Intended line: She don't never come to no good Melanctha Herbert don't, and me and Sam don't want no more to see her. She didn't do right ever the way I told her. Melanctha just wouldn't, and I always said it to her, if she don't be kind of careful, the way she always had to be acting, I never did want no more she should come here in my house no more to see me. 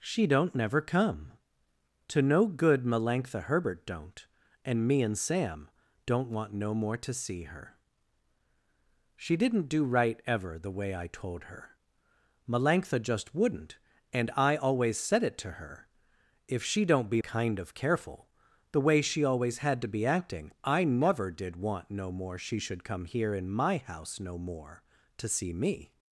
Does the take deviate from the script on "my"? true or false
false